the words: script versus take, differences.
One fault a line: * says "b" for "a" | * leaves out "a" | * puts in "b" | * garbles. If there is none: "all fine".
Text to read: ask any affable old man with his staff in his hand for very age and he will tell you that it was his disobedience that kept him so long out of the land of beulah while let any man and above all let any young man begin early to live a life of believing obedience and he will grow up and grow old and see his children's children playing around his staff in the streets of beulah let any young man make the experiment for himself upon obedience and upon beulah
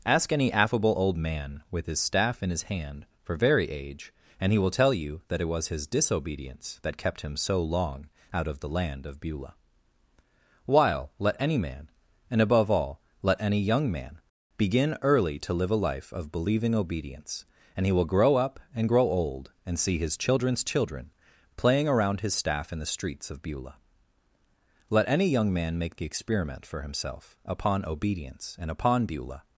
all fine